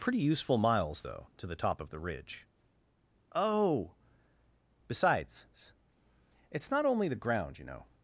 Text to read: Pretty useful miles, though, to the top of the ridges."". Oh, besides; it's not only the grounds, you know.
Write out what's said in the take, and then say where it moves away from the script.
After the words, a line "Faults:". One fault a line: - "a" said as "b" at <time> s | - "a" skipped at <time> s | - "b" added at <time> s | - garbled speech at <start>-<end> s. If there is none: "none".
Pretty useful miles, though, to the top of the ridge."". Oh, besides; it's not only the ground, you know.
Faults:
- "ridges" said as "ridge" at 2.0 s
- "grounds" said as "ground" at 7.1 s